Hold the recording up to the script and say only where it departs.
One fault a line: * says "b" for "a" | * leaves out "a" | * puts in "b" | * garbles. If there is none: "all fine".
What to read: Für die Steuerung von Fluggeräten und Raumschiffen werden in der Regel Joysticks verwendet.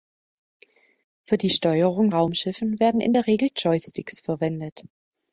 * leaves out "von Fluggeräten und"